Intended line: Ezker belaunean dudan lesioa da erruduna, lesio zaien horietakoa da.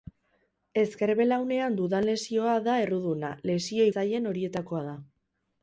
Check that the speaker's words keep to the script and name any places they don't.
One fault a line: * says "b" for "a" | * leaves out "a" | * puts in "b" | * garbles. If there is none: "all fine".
all fine